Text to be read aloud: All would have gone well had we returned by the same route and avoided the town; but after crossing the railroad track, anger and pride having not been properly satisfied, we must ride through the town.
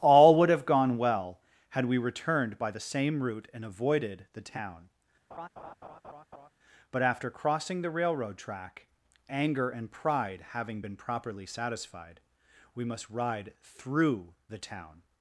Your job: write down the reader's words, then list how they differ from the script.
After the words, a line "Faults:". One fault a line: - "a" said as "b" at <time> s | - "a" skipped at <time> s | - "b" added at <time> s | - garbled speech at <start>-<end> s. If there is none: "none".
All would have gone well had we returned by the same route and avoided the town; but after crossing the railroad track, anger and pride having been properly satisfied, we must ride through the town.
Faults:
- "not" skipped at 10.8 s